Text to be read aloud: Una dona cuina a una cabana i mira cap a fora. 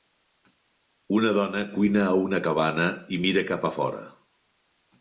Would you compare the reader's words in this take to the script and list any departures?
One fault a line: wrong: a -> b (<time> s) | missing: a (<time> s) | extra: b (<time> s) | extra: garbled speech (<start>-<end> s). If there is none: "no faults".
no faults